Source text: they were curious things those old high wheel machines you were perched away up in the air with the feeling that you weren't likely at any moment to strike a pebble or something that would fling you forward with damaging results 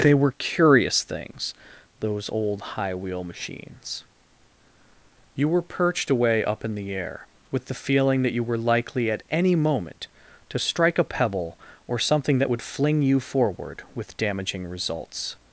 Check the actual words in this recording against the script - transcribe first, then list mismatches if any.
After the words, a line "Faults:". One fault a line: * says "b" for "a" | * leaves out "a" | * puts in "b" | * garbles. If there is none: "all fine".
they were curious things those old high wheel machines you were perched away up in the air with the feeling that you were likely at any moment to strike a pebble or something that would fling you forward with damaging results
Faults:
* says "were" for "weren't"